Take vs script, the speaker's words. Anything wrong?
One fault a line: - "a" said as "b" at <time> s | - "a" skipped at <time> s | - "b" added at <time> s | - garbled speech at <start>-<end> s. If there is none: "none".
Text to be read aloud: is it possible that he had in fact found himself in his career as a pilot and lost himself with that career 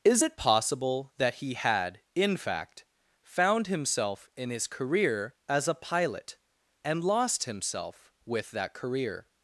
none